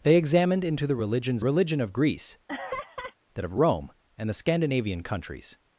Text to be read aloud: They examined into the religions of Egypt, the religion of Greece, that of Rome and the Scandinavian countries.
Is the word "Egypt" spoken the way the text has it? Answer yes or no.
no